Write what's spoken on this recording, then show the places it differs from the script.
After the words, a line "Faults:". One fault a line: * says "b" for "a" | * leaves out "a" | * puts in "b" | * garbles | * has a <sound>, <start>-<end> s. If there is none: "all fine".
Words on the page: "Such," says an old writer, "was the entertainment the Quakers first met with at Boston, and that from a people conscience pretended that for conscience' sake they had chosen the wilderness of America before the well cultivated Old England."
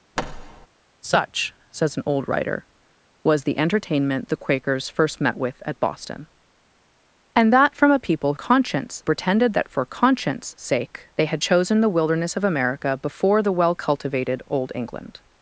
"Such," says an old writer, "was the entertainment the Quakers first met with at Boston, and that from a people conscience pretended that for conscience' sake they had chosen the wilderness of America before the well cultivated Old England."
Faults:
* has a thud, 0.2-0.7 s